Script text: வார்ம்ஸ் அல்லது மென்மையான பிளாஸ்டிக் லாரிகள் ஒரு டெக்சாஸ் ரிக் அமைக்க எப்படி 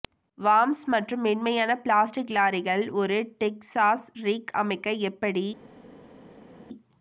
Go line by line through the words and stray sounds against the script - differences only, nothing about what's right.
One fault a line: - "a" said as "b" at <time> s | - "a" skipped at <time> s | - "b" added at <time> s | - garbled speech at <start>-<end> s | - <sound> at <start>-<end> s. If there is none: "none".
- "அல்லது" said as "மற்றும்" at 0.9 s